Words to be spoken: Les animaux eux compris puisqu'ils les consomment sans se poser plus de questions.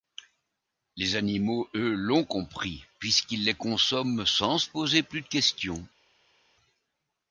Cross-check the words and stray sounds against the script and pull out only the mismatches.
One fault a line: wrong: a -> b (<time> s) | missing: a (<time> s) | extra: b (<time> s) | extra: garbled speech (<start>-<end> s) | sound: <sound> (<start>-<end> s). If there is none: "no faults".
extra: l'ont (1.9 s)